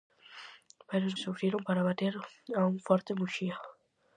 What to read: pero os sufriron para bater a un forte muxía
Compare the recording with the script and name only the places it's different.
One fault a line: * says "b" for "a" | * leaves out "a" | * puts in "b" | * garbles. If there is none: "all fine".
all fine